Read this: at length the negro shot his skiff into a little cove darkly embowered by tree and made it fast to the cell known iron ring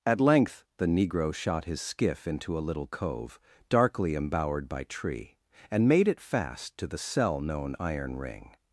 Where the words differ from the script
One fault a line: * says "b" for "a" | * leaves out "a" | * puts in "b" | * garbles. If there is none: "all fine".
all fine